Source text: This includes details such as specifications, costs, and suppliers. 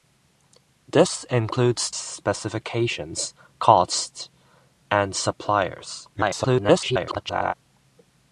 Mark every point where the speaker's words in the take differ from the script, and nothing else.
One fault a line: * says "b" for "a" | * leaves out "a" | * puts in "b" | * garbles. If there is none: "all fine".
* leaves out "details such as"
* garbles